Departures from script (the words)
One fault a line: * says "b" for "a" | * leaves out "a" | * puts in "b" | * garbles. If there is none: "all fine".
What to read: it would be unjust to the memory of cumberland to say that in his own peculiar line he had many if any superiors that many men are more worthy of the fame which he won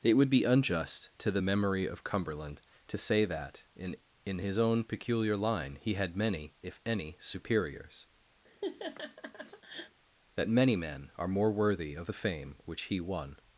* puts in "in"